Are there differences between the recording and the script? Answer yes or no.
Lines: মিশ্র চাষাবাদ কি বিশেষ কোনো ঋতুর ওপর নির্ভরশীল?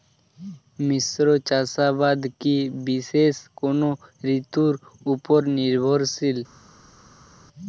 no